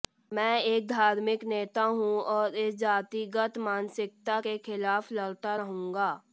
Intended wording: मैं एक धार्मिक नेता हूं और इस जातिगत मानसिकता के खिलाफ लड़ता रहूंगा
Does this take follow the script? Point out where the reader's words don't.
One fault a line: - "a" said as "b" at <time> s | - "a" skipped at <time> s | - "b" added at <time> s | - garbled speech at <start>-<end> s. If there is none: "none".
none